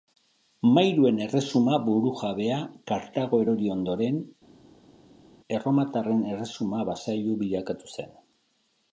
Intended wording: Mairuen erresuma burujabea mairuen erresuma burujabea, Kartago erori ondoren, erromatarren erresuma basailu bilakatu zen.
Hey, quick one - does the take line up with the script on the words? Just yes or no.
no